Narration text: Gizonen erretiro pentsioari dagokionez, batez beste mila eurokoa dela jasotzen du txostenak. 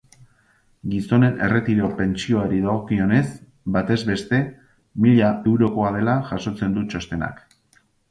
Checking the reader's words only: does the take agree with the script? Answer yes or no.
yes